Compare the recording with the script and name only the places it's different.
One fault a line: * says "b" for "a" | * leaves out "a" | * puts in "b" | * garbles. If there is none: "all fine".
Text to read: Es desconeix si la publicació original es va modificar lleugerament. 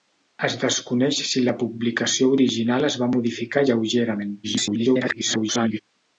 * garbles